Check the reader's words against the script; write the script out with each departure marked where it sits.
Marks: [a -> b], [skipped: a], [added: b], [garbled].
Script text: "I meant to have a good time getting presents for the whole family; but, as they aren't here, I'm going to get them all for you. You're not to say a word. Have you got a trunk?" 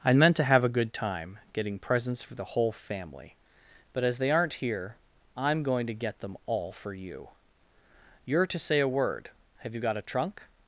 "I meant to have a good time getting presents for the whole family; but, as they aren't here, I'm going to get them all for you. You're [skipped: not] to say a word. Have you got a trunk?"